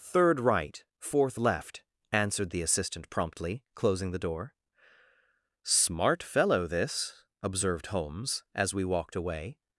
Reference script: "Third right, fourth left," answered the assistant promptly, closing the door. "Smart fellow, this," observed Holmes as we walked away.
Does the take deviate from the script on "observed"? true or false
false